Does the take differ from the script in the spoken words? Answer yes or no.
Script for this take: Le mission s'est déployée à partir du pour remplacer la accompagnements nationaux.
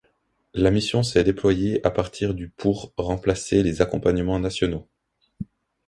yes